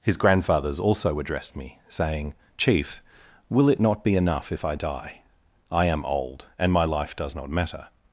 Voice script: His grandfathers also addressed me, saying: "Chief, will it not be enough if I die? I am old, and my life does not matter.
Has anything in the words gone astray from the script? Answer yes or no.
no